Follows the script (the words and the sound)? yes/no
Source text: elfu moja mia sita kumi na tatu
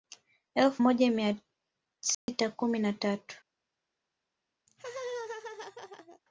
no